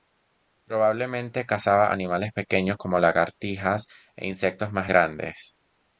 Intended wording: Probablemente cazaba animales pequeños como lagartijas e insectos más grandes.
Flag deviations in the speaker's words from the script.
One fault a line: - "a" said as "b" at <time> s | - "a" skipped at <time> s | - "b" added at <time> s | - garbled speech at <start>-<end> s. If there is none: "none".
none